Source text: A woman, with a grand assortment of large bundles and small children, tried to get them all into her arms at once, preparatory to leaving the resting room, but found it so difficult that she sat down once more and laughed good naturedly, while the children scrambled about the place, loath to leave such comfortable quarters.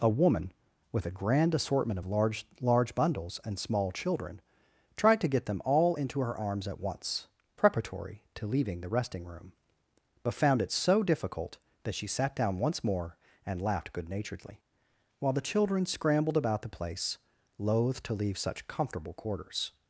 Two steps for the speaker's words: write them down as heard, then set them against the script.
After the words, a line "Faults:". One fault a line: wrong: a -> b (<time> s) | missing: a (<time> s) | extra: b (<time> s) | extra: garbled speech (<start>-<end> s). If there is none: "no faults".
A woman, with a grand assortment of large large bundles and small children, tried to get them all into her arms at once, preparatory to leaving the resting room, but found it so difficult that she sat down once more and laughed good naturedly, while the children scrambled about the place, loath to leave such comfortable quarters.
Faults:
extra: large (2.6 s)